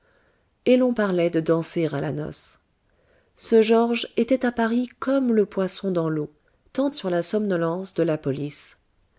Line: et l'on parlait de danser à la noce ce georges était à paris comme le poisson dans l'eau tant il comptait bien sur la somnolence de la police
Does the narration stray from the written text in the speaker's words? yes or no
yes